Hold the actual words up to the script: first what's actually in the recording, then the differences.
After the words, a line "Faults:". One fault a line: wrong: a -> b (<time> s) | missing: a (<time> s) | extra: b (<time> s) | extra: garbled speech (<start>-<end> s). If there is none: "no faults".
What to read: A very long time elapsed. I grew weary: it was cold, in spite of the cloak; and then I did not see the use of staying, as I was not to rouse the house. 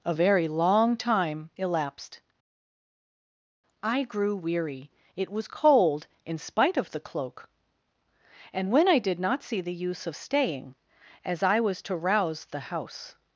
A very long time elapsed. I grew weary: it was cold, in spite of the cloak; and when I did not see the use of staying, as I was to rouse the house.
Faults:
wrong: then -> when (8.7 s)
missing: not (11.8 s)